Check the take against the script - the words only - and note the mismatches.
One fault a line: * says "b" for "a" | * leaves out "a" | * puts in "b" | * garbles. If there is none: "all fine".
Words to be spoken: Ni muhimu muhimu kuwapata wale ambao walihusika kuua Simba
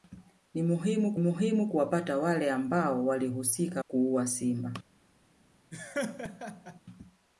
all fine